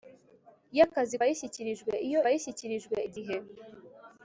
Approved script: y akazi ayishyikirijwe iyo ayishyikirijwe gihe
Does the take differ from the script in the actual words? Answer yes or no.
no